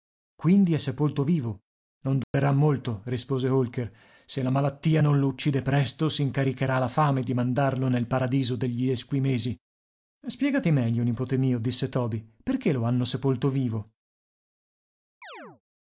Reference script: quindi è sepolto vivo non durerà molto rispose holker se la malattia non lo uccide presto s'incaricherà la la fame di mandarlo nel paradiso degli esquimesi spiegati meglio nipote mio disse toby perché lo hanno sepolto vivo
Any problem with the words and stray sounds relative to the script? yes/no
yes